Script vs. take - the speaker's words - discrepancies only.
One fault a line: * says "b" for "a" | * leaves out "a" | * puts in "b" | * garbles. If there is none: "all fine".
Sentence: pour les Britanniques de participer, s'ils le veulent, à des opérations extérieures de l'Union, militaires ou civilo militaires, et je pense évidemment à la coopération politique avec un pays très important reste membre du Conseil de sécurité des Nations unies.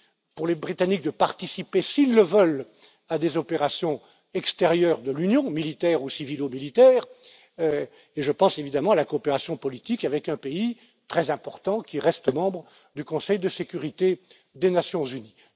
* puts in "qui"